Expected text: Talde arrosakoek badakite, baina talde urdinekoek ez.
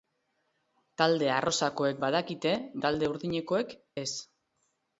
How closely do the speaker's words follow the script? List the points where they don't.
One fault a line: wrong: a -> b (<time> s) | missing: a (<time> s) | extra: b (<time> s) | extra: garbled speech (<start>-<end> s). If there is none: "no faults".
missing: baina (2.5 s)